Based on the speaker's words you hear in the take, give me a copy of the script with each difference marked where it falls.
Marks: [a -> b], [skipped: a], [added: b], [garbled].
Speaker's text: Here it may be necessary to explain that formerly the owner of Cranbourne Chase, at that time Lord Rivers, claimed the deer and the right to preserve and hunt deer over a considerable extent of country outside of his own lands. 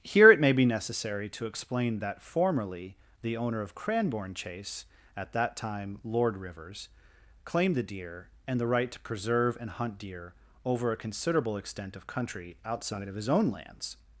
Here it may be necessary to explain that formerly the owner of Cranbourne Chase, at that time Lord Rivers, claimed the deer and the right to preserve and hunt deer over a considerable extent of country outside of his own lands.